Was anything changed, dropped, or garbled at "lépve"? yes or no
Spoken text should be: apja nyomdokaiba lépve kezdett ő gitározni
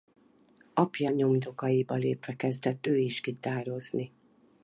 no